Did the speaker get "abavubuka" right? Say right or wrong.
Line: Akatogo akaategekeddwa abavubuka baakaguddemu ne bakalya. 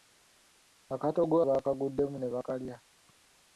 wrong